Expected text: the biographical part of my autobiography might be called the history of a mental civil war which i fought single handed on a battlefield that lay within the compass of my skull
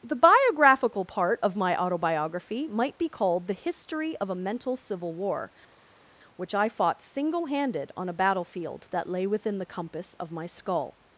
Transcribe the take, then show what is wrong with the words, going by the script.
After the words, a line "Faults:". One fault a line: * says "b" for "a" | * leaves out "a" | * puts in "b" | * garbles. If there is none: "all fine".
the biographical part of my autobiography might be called the history of a mental civil war which i fought single handed on a battlefield that lay within the compass of my skull
Faults:
all fine